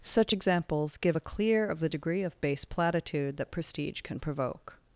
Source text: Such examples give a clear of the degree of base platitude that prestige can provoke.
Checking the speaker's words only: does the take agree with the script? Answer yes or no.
yes